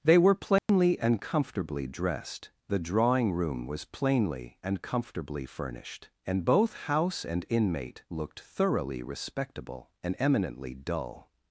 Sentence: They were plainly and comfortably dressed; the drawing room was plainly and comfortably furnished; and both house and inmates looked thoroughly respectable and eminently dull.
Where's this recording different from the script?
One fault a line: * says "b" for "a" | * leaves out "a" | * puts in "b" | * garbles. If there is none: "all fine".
* says "inmate" for "inmates"